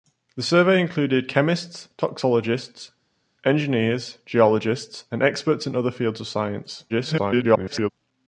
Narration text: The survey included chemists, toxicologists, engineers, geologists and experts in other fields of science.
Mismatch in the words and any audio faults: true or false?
true